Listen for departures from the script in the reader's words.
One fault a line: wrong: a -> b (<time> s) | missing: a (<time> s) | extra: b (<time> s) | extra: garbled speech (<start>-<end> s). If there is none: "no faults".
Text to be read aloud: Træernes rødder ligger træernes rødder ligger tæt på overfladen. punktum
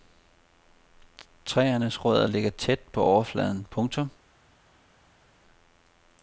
missing: træernes rødder ligger (2.5 s)